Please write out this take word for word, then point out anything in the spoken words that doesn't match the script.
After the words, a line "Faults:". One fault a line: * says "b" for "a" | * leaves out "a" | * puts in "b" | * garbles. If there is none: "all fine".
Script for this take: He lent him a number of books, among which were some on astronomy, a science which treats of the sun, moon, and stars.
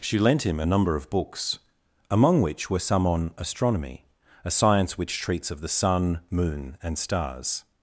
She lent him a number of books, among which were some on astronomy, a science which treats of the sun, moon, and stars.
Faults:
* says "She" for "He"